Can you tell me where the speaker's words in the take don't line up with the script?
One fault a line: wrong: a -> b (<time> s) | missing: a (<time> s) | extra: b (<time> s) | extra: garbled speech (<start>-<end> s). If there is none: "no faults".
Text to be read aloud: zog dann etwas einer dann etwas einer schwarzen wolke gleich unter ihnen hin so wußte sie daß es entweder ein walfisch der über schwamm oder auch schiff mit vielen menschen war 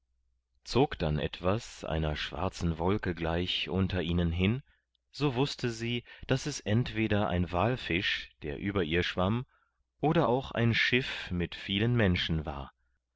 missing: dann etwas einer (2.1 s)
extra: ihr (8.8 s)
extra: ein (10.5 s)